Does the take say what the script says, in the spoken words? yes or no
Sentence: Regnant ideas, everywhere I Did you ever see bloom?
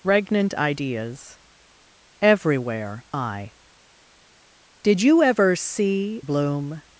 yes